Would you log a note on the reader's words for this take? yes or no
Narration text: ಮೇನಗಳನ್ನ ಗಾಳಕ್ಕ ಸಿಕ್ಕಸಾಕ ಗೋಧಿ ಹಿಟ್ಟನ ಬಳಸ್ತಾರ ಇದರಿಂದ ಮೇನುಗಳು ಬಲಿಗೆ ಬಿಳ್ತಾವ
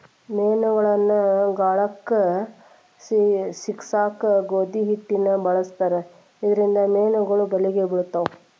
no